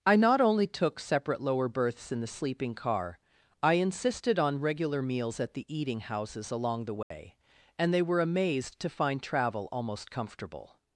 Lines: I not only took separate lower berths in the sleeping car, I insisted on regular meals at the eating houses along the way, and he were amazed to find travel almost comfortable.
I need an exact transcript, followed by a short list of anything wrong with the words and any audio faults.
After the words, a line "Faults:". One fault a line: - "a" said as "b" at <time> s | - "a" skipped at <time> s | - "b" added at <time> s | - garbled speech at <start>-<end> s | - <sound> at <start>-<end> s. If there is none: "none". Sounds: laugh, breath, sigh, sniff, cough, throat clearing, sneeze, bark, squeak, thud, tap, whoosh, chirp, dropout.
I not only took separate lower berths in the sleeping car, I insisted on regular meals at the eating houses along the way, and they were amazed to find travel almost comfortable.
Faults:
- dropout at 7.0-7.1 s
- "he" said as "they" at 7.9 s